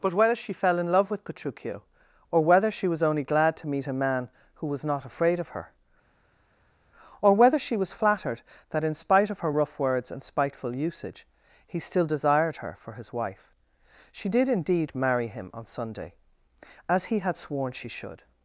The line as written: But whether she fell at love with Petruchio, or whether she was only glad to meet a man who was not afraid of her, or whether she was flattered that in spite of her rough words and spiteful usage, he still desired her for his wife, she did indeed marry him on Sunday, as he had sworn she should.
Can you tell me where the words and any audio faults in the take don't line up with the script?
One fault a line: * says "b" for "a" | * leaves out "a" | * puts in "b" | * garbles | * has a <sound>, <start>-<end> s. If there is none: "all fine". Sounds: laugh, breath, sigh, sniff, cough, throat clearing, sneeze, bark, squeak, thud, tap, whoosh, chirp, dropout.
* says "in" for "at"